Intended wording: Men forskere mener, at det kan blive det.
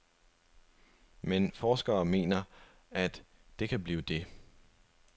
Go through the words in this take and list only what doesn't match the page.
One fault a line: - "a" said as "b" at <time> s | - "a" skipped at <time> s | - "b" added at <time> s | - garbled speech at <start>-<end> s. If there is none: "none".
none